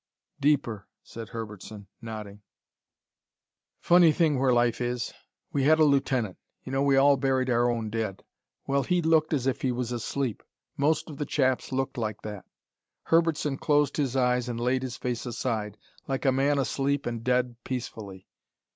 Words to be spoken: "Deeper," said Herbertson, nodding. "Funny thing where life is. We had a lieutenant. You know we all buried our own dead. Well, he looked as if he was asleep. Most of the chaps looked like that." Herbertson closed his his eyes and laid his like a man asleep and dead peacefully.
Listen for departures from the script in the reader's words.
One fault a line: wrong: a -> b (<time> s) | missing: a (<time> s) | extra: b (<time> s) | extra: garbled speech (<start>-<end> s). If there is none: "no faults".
missing: his (14.2 s)
extra: face aside (15.0 s)